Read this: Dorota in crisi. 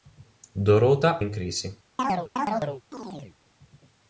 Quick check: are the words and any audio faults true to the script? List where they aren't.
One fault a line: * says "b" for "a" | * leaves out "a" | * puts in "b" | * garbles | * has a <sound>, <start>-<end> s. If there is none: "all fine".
* has a chirp, 2.0-3.4 s